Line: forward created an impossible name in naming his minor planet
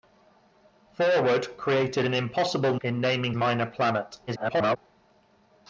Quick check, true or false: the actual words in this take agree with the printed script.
false